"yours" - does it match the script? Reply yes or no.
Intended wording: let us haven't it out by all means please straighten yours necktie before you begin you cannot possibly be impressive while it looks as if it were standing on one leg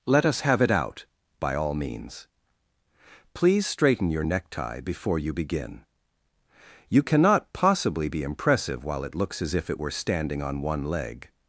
no